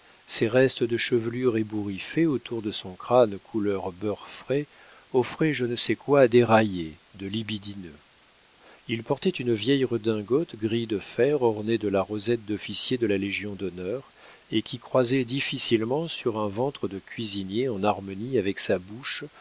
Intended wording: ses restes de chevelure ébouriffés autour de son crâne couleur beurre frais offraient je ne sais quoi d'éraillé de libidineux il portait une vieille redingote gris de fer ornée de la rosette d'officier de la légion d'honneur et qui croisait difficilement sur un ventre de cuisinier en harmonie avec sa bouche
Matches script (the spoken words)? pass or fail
pass